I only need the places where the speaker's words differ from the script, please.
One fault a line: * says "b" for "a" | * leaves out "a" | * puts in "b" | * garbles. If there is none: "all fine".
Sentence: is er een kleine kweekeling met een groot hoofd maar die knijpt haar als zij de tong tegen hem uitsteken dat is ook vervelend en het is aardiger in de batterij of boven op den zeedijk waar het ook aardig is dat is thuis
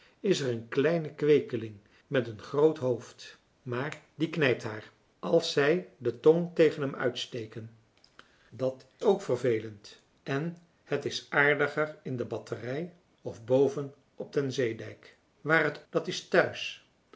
* leaves out "is"
* leaves out "ook aardig is"